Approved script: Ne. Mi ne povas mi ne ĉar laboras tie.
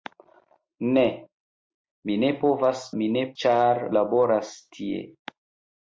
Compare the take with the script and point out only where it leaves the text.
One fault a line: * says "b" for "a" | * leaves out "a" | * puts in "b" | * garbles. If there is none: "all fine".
all fine